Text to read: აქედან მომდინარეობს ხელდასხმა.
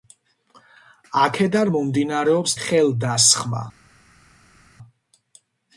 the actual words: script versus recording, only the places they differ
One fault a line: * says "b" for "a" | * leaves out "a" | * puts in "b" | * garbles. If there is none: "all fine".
all fine